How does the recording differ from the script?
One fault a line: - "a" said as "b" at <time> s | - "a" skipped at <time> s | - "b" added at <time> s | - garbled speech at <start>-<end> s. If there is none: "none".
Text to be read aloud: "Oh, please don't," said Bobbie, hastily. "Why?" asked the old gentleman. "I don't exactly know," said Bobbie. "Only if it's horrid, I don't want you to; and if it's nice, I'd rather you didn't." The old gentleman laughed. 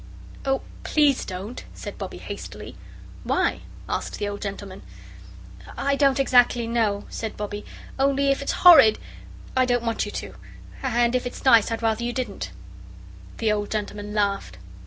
none